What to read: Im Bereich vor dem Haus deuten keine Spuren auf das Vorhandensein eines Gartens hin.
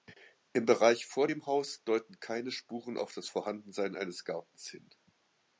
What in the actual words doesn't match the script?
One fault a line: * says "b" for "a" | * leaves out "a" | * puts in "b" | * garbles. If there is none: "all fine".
all fine